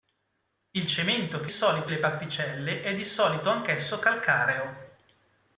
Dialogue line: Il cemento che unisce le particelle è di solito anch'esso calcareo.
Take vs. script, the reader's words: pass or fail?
fail